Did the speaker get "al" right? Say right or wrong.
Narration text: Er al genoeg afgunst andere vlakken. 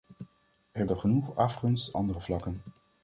right